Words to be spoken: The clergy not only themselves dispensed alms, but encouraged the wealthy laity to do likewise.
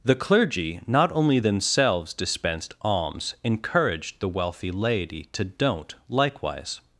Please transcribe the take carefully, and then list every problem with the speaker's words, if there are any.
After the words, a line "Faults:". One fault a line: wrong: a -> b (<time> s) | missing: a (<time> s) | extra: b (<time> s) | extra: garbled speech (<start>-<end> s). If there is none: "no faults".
The clergy not only themselves dispensed alms, encouraged the wealthy laity to don't likewise.
Faults:
missing: but (3.3 s)
wrong: do -> don't (5.4 s)